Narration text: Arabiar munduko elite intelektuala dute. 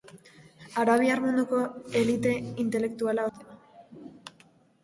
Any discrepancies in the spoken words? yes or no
no